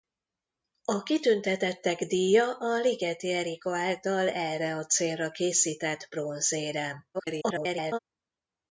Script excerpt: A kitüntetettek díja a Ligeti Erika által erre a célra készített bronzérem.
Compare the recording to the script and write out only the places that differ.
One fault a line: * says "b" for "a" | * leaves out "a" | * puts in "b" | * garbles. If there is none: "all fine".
* garbles